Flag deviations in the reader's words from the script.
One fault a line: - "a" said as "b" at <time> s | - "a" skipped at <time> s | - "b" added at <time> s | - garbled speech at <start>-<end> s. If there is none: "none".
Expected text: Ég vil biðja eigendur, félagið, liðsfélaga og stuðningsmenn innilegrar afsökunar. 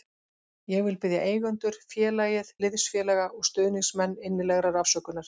none